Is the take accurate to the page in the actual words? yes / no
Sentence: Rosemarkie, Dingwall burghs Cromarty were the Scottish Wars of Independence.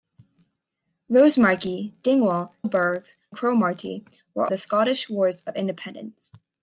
yes